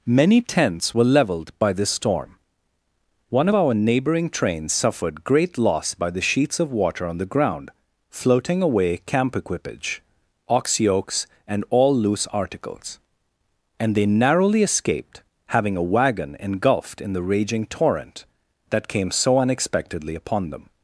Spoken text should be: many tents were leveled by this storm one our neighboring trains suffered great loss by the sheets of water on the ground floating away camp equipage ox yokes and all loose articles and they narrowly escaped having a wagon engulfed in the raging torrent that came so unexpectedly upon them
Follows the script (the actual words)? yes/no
yes